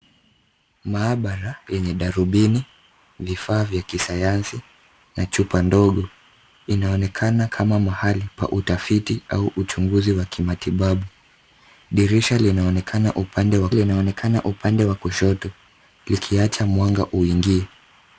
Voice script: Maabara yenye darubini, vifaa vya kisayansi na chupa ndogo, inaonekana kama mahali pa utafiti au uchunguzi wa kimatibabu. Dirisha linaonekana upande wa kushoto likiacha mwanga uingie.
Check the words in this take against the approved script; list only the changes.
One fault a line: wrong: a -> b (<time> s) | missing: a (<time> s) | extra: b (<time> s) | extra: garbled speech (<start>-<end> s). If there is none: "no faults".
extra: linaonekana upande wa (13.7 s)